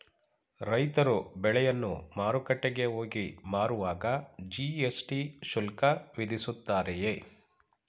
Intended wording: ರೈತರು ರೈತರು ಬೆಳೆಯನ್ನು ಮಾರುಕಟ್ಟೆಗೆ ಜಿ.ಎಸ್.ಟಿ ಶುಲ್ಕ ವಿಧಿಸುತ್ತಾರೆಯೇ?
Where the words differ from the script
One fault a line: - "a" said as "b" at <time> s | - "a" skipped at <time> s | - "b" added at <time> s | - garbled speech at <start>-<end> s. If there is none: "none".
- "ರೈತರು" skipped at 1.1 s
- "ಹೋಗಿ ಮಾರುವಾಗ" added at 2.9 s